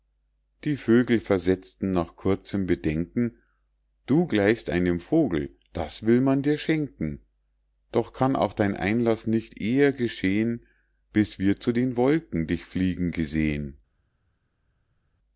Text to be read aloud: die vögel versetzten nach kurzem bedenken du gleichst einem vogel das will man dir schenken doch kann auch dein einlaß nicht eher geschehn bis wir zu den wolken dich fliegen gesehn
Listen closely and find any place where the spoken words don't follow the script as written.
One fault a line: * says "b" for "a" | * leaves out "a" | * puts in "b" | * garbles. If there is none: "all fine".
all fine